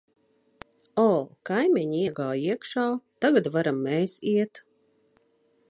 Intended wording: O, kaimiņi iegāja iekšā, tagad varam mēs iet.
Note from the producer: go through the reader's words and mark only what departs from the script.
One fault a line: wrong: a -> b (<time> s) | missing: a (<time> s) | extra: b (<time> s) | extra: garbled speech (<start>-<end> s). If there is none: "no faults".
no faults